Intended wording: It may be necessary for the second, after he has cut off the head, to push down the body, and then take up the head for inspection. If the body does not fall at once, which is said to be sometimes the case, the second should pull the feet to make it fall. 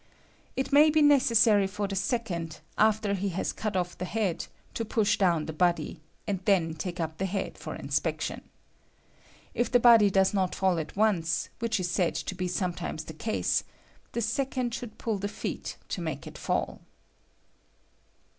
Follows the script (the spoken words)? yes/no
yes